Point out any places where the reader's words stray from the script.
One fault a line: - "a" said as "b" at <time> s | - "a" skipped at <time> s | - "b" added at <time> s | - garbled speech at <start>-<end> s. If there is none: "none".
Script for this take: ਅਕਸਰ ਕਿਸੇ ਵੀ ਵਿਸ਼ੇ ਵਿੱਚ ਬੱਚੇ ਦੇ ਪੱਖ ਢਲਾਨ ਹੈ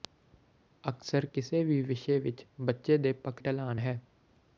none